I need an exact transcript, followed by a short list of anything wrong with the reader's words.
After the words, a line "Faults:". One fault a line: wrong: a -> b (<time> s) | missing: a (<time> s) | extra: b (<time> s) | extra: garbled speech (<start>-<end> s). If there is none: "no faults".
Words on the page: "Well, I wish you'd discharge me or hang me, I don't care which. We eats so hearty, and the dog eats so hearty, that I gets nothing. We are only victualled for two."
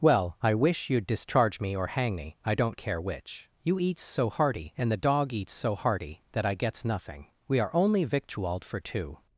"Well, I wish you'd discharge me or hang me, I don't care which. You eats so hearty, and the dog eats so hearty, that I gets nothing. We are only victualled for two."
Faults:
wrong: We -> You (3.6 s)